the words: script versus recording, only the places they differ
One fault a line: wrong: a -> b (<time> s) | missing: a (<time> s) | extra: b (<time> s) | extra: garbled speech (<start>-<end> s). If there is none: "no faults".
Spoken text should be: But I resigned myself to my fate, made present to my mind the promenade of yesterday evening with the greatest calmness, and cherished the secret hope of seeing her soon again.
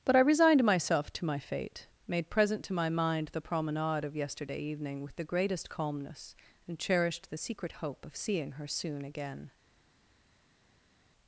no faults